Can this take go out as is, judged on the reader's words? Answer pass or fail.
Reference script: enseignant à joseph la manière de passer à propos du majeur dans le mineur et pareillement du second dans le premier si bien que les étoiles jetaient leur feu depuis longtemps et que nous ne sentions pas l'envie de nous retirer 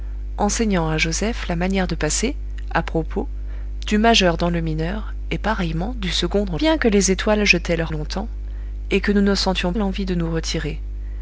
fail